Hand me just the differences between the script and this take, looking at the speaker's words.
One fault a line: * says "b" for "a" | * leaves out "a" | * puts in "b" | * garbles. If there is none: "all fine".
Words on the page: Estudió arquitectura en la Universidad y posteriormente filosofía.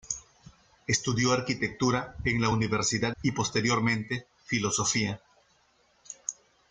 all fine